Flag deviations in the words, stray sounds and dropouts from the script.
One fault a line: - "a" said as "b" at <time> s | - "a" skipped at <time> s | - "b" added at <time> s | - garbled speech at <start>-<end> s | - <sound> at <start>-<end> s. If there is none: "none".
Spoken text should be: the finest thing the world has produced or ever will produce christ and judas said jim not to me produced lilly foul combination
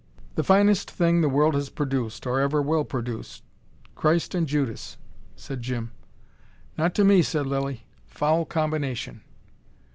- "produced" said as "said" at 7.2 s